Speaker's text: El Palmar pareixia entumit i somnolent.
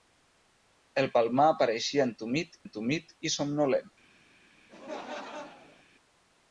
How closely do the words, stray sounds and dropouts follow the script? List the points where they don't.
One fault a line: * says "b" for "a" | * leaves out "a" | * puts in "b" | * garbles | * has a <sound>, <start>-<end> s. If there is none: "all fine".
* puts in "entumit"
* has a laugh, 4.7-5.8 s